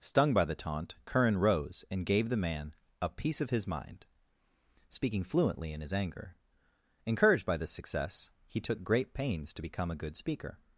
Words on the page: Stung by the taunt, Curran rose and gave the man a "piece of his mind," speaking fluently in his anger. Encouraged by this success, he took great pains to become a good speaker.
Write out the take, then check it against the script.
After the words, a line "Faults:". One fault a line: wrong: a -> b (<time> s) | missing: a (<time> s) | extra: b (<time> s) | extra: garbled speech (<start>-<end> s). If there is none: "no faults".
Stung by the taunt, Curran rose and gave the man a "piece of his mind," speaking fluently in his anger. Encouraged by this success, he took great pains to become a good speaker.
Faults:
no faults